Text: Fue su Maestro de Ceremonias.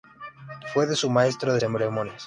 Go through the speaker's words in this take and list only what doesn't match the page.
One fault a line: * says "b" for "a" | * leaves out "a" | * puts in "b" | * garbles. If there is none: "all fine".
all fine